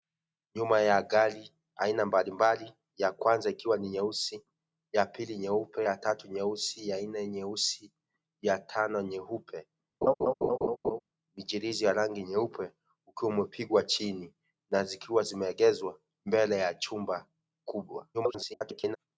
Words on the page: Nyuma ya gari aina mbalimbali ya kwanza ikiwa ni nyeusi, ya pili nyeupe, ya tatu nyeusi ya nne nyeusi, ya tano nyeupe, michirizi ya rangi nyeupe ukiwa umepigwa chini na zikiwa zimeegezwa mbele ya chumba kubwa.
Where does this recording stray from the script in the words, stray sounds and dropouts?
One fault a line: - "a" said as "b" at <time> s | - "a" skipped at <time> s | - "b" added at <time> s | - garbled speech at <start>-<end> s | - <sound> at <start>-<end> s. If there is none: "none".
- laugh at 10.0-11.0 s
- garbled speech at 18.1-19.0 s